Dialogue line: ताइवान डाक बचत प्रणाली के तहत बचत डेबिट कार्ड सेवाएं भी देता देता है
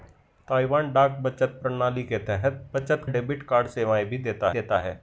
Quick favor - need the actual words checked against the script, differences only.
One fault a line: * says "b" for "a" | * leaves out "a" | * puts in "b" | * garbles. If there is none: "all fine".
all fine